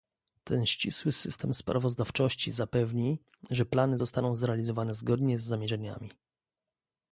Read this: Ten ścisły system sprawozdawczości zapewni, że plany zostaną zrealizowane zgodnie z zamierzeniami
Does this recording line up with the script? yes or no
yes